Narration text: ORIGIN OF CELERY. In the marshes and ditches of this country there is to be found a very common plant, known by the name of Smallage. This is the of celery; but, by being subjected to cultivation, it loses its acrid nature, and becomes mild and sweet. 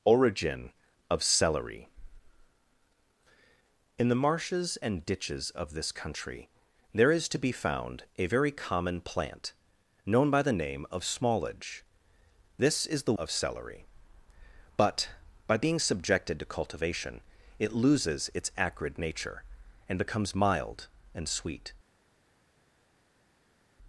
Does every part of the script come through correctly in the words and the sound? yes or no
yes